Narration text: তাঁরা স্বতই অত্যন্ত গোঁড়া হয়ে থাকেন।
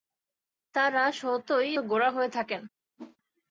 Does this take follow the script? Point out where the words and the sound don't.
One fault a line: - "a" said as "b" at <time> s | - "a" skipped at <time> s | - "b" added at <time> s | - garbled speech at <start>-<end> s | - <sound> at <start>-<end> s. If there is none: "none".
- "অত্যন্ত" skipped at 1.8 s
- whoosh at 3.0-3.2 s